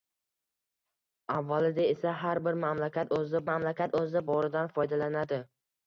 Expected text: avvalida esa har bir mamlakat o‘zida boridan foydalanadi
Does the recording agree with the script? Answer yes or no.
no